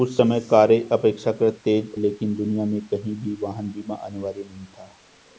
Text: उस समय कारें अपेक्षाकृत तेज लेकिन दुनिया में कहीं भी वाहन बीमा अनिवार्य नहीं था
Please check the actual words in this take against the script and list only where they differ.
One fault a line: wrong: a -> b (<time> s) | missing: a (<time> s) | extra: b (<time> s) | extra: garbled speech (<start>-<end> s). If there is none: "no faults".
no faults